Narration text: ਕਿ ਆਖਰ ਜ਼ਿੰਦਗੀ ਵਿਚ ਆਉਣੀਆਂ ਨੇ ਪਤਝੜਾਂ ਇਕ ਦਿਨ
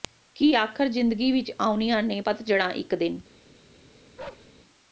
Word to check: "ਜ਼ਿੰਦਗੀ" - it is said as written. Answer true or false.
true